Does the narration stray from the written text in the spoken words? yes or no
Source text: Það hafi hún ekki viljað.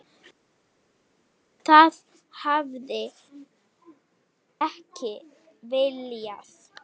yes